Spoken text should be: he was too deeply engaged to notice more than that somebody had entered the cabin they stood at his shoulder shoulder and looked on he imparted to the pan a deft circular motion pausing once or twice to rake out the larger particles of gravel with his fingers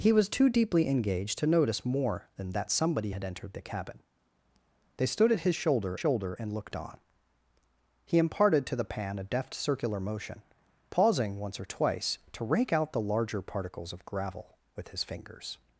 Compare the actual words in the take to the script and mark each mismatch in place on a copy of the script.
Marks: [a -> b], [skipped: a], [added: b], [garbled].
he was too deeply engaged to notice more than that somebody had entered the cabin they stood at his shoulder shoulder and looked on he imparted to the pan a deft circular motion pausing once or twice to rake out the larger particles of gravel with his fingers